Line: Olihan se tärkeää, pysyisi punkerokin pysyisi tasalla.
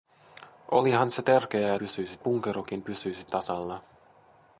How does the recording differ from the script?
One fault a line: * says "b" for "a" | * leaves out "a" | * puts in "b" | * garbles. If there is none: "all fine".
all fine